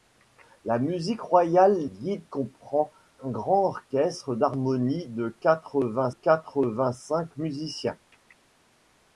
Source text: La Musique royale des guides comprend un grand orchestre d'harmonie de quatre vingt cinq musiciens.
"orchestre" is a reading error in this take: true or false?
false